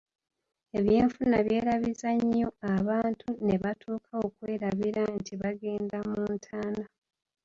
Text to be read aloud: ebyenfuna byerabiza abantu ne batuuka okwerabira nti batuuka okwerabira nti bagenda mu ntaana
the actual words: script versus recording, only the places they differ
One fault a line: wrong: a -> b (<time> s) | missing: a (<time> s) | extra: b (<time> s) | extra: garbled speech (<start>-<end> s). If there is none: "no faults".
extra: nnyo (2.2 s)
missing: batuuka okwerabira nti (5.3 s)